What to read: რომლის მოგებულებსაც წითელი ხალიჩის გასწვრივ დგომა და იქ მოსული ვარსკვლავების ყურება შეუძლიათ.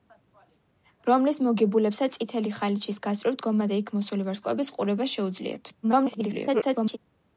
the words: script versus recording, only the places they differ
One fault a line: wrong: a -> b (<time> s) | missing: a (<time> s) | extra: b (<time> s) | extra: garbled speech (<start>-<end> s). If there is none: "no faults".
extra: garbled speech (5.8-7.0 s)